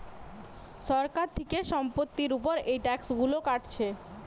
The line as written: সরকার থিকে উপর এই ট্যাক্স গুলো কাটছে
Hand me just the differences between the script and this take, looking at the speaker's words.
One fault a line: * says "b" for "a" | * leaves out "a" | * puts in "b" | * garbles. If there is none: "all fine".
* puts in "সম্পত্তির"